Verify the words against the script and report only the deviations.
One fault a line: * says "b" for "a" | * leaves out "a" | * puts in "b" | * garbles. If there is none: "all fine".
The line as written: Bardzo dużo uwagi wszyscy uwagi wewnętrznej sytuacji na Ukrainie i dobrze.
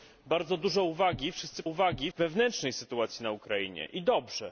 all fine